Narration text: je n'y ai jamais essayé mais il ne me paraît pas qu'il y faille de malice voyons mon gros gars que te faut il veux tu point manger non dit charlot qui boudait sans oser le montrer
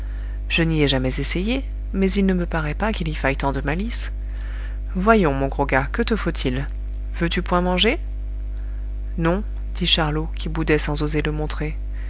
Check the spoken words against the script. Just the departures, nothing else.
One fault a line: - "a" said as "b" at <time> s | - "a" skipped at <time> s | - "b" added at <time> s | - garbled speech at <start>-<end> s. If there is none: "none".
- "tant" added at 3.3 s